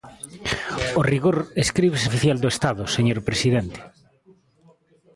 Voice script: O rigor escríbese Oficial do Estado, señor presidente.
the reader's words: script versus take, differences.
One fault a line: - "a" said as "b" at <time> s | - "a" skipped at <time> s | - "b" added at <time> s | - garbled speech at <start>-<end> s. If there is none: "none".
none